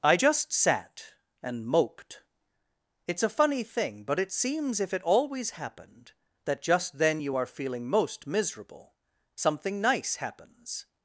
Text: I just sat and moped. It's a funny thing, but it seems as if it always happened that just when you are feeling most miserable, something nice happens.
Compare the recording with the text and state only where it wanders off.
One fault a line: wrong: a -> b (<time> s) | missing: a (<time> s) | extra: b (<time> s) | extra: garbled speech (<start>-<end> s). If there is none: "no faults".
missing: as (4.8 s)
wrong: when -> then (7.0 s)